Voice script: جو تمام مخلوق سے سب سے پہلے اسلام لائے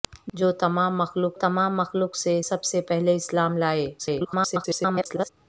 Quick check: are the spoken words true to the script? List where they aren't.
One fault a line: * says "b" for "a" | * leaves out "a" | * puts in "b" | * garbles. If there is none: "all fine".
* puts in "تمام مخلوق"
* garbles